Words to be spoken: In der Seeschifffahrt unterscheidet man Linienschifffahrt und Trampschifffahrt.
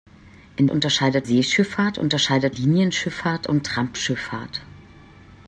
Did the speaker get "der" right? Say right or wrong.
wrong